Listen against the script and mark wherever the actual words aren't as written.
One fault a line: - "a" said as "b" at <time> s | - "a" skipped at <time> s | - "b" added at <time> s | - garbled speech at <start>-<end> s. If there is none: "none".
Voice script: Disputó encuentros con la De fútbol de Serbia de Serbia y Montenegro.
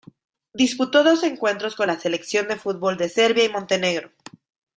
- "dos" added at 1.0 s
- "Selección" added at 2.0 s
- "de Serbia" skipped at 3.4 s